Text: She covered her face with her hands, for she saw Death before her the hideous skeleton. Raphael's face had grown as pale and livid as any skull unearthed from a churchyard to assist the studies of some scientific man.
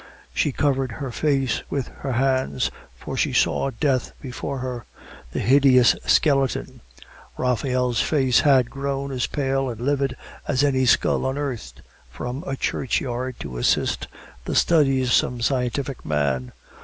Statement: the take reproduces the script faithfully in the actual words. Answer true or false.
false